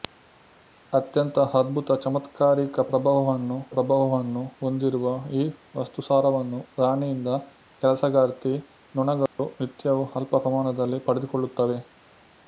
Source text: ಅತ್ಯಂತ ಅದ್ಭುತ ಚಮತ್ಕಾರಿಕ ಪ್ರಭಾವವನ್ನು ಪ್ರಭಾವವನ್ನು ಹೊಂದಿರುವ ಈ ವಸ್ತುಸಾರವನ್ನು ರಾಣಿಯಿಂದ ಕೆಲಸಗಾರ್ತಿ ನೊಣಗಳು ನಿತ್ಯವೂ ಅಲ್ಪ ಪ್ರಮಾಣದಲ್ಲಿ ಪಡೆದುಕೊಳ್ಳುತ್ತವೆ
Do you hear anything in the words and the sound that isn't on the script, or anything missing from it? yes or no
yes